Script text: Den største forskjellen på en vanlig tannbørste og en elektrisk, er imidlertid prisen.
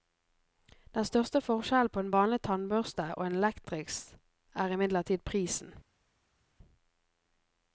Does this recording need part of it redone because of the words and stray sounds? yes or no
no